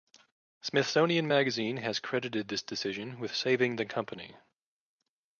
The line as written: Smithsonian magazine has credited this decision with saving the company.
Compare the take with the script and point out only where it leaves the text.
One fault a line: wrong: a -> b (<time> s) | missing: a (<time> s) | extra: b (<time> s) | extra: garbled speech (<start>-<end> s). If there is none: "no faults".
no faults